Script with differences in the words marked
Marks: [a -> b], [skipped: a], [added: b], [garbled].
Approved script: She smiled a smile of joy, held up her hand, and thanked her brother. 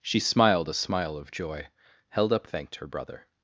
She smiled a smile of joy, held up [skipped: her hand, and] thanked her brother.